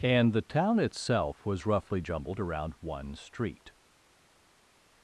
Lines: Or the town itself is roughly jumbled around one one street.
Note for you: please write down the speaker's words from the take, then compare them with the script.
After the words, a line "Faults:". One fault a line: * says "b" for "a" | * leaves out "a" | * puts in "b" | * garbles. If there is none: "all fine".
And the town itself was roughly jumbled around one street.
Faults:
* says "And" for "Or"
* says "was" for "is"
* leaves out "one"